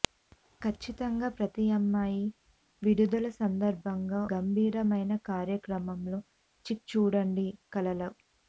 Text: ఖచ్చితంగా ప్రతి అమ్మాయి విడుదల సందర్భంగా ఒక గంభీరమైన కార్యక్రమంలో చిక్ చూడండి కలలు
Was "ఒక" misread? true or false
true